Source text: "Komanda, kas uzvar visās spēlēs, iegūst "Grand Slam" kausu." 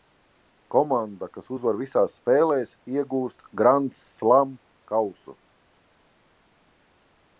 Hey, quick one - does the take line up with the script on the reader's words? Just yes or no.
yes